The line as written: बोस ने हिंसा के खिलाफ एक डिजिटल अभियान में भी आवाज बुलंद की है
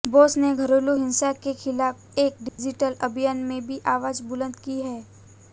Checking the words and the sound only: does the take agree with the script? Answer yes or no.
no